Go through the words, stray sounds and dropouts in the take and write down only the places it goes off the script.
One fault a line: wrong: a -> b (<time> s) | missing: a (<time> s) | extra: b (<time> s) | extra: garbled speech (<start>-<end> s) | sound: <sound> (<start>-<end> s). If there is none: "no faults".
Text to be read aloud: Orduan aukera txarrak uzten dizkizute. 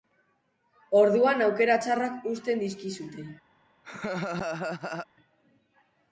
sound: laugh (3.8-5.1 s)